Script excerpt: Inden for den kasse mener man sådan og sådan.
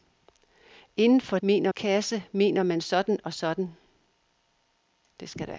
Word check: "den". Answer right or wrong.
wrong